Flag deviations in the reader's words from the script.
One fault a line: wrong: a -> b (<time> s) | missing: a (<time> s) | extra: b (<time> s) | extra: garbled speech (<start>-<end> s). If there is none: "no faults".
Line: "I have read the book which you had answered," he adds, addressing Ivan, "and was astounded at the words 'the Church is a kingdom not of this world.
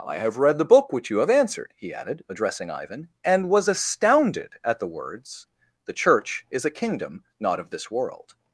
wrong: had -> have (1.2 s)
wrong: adds -> added (1.9 s)